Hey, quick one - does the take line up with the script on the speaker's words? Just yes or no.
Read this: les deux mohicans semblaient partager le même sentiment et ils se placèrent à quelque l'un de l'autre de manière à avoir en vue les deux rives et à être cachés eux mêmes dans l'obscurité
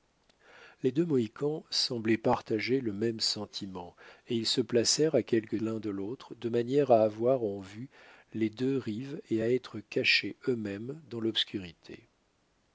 yes